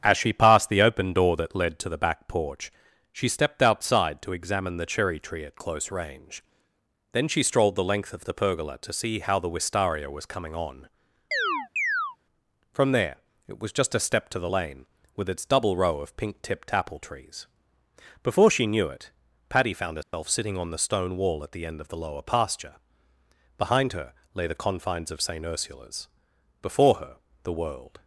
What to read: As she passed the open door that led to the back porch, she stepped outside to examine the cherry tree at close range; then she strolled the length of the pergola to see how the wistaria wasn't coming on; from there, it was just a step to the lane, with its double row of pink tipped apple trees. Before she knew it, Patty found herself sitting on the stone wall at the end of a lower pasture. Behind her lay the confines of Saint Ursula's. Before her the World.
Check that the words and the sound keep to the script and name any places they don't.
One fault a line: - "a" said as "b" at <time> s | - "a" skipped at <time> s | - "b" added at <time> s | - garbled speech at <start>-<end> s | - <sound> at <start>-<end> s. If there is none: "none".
- "wasn't" said as "was" at 10.1 s
- chirp at 11.3-12.2 s
- dropout at 20.0-20.1 s
- "a" said as "the" at 21.9 s